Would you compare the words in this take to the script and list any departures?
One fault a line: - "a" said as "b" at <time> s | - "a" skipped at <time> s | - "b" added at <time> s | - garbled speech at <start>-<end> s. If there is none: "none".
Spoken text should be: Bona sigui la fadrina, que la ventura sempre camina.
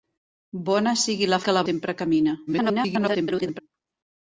- "fadrina" skipped at 1.4 s
- "ventura" skipped at 1.7 s
- garbled speech at 2.5-3.6 s